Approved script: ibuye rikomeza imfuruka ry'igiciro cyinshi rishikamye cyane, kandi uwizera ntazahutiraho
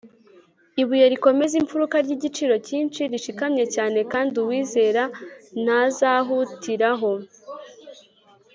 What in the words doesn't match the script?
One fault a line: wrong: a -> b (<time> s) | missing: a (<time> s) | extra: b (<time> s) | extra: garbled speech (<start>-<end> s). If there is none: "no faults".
no faults